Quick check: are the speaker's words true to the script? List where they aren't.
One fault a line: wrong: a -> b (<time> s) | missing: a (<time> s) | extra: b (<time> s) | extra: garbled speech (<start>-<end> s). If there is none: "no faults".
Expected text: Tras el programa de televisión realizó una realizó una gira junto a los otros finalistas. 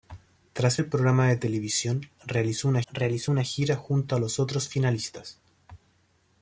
no faults